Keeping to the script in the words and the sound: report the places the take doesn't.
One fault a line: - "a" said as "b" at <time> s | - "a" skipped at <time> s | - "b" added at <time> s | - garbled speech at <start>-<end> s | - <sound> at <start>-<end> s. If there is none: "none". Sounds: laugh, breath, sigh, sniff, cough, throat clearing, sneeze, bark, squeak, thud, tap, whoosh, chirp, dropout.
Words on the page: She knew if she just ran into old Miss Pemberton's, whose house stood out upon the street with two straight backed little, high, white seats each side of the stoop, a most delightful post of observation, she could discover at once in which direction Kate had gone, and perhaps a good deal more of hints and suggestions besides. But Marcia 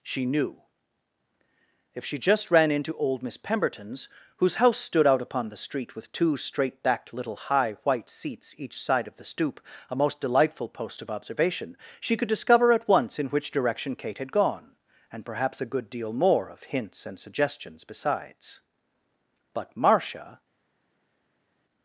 none